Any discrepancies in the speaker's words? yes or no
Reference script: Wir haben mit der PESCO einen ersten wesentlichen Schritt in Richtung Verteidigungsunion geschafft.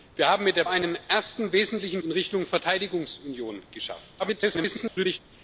yes